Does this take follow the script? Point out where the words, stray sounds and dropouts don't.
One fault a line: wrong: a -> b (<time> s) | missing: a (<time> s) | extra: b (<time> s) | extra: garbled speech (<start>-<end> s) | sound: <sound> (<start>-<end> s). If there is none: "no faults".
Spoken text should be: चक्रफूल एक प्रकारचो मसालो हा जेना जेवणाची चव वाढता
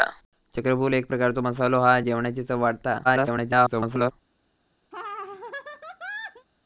missing: जेना (2.0 s)
extra: garbled speech (3.0-4.1 s)
sound: laugh (4.9-6.5 s)